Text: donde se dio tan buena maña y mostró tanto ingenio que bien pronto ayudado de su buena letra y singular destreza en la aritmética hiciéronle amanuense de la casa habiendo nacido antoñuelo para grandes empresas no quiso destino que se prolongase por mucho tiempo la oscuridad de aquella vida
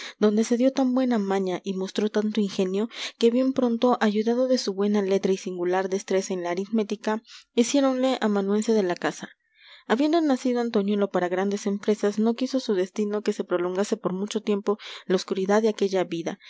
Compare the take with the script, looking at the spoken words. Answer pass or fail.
fail